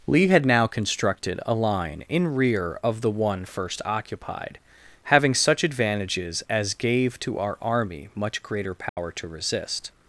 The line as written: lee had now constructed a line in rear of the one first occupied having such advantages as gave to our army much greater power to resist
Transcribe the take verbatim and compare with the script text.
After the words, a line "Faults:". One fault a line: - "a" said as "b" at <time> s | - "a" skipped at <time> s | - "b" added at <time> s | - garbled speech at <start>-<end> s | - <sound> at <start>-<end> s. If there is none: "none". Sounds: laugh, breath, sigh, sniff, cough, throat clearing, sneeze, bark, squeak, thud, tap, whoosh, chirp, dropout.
lee had now constructed a line in rear of the one first occupied having such advantages as gave to our army much greater power to resist
Faults:
- dropout at 8.9-9.0 s